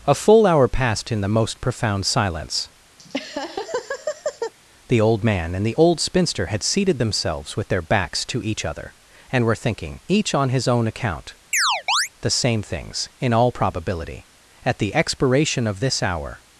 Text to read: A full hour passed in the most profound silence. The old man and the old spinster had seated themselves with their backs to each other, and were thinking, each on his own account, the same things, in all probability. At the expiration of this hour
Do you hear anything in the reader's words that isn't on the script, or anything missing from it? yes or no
no